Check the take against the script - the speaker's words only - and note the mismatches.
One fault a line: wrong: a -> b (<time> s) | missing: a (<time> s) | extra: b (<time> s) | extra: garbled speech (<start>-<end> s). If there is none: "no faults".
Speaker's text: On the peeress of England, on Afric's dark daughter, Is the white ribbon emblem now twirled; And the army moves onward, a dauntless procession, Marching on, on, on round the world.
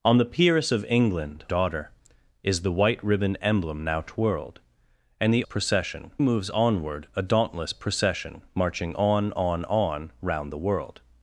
missing: on Afric's dark (1.4 s)
wrong: army -> procession (5.4 s)